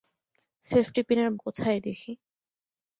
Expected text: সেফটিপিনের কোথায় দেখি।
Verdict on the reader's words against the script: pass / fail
pass